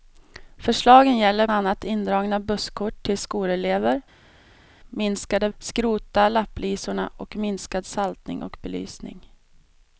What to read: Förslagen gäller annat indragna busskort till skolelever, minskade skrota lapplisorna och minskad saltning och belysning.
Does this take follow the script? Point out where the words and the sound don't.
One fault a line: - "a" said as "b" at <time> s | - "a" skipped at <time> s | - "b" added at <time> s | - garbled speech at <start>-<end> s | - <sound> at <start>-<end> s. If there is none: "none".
none